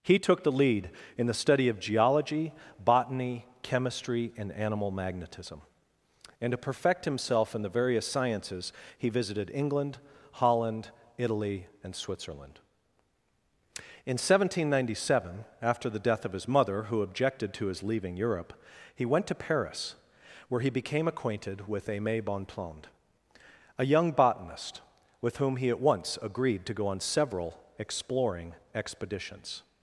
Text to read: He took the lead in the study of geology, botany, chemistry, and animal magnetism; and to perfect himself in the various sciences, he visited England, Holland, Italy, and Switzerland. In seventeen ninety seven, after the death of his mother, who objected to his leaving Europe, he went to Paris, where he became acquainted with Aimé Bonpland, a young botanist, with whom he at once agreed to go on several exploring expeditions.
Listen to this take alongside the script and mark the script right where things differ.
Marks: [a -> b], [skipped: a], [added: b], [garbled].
He took the lead in the study of geology, botany, chemistry, and animal magnetism; and to perfect himself in the various sciences, he visited England, Holland, Italy, and Switzerland. In seventeen ninety seven, after the death of his mother, who objected to his leaving Europe, he went to Paris, where he became acquainted with Aimé Bonpland, a young botanist, with whom he at once agreed to go on several exploring expeditions.